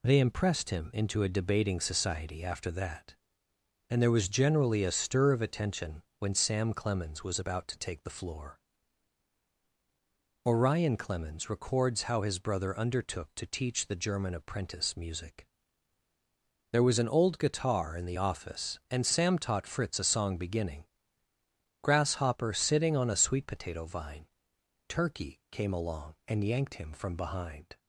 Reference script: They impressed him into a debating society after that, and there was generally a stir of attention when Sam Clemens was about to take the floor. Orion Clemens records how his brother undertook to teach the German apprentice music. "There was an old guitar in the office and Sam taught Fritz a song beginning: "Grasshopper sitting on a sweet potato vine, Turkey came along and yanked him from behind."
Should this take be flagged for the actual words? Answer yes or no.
no